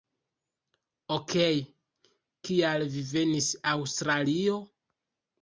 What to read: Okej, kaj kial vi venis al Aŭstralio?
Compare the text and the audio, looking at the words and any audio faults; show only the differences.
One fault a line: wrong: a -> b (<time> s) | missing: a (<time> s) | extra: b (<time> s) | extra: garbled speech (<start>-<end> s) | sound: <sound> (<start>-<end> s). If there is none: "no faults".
missing: kaj (1.6 s)
missing: al (3.5 s)